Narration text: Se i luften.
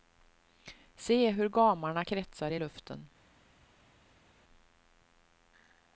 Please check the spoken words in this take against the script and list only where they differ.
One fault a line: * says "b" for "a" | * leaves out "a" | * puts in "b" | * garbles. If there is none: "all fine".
* puts in "hur gamarna kretsar"